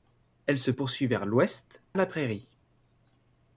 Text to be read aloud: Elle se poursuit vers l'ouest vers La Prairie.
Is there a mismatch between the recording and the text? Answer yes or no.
yes